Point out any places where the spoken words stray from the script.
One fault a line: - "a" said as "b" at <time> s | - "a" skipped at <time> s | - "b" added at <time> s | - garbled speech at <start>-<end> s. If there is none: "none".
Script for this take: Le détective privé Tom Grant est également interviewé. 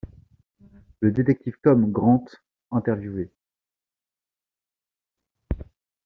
- "privé" skipped at 1.5 s
- "est également" skipped at 2.2 s